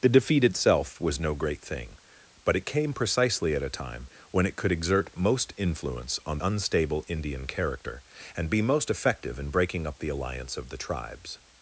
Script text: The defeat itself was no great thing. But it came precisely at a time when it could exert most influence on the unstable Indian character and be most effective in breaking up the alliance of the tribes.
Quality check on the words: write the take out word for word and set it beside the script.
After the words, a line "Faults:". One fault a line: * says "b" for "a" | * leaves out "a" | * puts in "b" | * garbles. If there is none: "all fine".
The defeat itself was no great thing. But it came precisely at a time when it could exert most influence on unstable Indian character and be most effective in breaking up the alliance of the tribes.
Faults:
* leaves out "the"